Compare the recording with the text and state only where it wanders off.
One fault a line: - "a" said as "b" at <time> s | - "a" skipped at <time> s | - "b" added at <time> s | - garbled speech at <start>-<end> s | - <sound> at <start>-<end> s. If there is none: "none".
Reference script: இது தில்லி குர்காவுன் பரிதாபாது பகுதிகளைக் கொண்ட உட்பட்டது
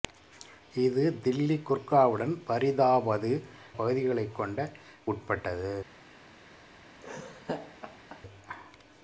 - laugh at 7.0-8.2 s